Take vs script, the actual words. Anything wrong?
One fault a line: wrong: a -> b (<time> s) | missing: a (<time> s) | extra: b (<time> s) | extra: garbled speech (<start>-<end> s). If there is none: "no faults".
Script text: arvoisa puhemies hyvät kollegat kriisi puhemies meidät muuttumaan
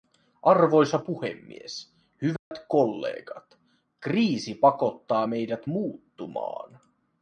wrong: puhemies -> pakottaa (4.5 s)